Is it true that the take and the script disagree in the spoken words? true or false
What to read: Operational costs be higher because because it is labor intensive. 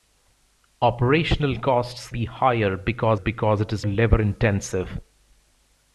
false